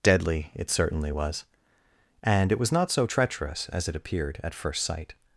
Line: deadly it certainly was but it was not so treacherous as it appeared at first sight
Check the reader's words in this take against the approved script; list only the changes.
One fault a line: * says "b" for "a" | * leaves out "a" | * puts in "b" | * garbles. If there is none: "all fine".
* says "and" for "but"